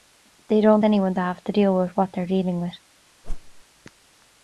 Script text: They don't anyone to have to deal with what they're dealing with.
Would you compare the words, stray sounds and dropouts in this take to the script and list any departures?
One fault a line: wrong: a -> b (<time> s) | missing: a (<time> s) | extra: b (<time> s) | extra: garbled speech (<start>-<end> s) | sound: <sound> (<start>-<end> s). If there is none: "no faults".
sound: whoosh (3.2-3.6 s)